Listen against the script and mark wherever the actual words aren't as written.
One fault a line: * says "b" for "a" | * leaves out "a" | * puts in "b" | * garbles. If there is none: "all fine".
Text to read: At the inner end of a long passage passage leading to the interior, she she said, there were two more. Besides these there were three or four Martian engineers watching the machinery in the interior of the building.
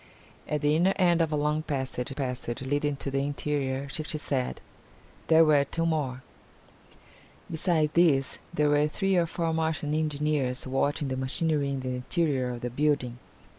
all fine